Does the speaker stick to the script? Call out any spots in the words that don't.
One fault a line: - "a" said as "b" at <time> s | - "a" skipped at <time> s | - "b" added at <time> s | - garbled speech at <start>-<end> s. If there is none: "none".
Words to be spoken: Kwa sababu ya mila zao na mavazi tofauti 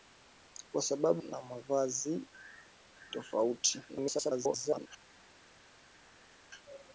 - "ya mila zao" skipped at 1.2 s
- garbled speech at 3.9-4.9 s